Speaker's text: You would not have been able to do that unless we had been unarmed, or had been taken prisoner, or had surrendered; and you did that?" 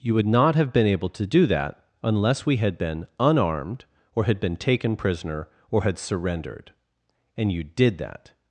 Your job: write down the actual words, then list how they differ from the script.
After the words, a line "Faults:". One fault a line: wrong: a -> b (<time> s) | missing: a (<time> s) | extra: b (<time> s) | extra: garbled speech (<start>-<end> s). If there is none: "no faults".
You would not have been able to do that unless we had been unarmed, or had been taken prisoner, or had surrendered; and you did that?"
Faults:
no faults